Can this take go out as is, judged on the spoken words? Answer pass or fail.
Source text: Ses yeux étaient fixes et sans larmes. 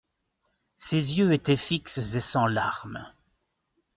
pass